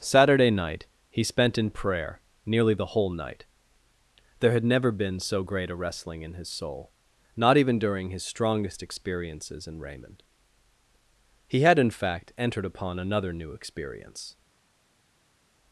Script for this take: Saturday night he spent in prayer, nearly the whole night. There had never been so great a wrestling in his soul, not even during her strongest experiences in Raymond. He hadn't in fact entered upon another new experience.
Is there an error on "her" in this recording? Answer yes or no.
yes